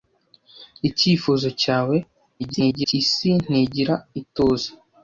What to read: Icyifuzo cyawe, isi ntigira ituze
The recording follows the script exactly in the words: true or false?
false